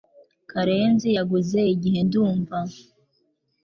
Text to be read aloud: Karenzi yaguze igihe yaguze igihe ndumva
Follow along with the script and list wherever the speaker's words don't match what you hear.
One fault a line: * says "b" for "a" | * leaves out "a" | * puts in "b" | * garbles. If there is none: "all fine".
* leaves out "yaguze igihe"